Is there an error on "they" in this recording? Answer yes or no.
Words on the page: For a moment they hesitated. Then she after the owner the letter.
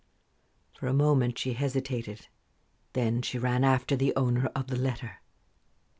yes